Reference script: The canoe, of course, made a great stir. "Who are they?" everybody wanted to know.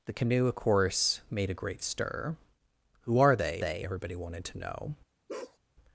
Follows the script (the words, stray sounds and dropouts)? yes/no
no